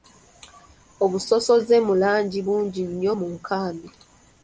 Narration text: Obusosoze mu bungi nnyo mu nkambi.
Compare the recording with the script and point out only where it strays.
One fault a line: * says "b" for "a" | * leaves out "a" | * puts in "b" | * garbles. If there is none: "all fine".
* puts in "langi"